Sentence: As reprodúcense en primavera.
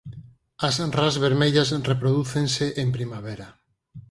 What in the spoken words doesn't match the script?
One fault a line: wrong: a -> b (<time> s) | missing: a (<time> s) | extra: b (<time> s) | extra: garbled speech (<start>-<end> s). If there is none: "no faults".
extra: ras vermellas (1.0 s)